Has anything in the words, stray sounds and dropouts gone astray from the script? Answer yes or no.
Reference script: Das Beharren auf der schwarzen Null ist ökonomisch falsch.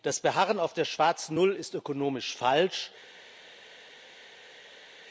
no